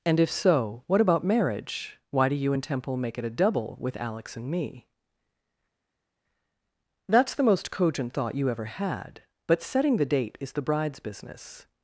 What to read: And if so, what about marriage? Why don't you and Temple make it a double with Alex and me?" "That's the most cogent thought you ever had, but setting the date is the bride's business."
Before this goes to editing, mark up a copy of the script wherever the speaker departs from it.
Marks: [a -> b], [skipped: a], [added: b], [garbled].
And if so, what about marriage? Why [don't -> do] you and Temple make it a double with Alex and me?" "That's the most cogent thought you ever had, but setting the date is the bride's business."